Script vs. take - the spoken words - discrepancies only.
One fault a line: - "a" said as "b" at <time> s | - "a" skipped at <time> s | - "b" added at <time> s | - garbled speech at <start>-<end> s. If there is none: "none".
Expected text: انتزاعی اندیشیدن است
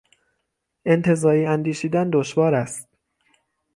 - "دشوار" added at 2.1 s